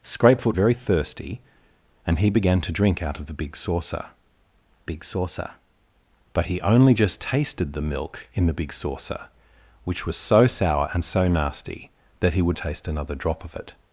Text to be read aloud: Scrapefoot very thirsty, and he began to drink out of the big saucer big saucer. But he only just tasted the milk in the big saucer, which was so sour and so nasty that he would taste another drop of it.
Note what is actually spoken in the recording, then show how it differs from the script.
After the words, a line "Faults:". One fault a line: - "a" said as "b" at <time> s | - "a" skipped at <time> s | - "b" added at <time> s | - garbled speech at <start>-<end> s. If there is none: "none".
Scrapefoot very thirsty, and he began to drink out of the big saucer big saucer. But he only just tasted the milk in the big saucer, which was so sour and so nasty that he would taste another drop of it.
Faults:
none